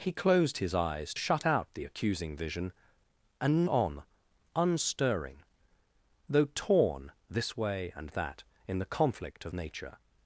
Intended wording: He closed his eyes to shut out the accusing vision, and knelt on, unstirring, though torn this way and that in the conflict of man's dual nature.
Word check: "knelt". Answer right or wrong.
wrong